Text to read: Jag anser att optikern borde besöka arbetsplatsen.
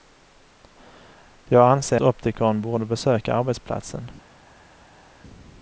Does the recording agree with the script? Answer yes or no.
no